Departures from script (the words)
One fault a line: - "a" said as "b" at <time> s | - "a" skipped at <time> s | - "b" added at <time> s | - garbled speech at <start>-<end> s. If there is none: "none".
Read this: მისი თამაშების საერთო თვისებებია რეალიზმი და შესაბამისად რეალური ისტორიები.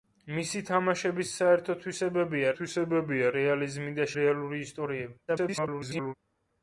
- "თვისებებია" added at 2.6 s
- "შესაბამისად" skipped at 4.1 s
- garbled speech at 5.3-6.1 s